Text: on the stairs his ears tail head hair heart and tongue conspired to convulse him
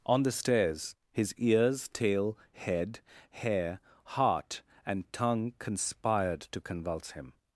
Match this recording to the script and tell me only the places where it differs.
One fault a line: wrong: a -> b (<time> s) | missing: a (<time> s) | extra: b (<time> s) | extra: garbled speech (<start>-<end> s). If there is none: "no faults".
no faults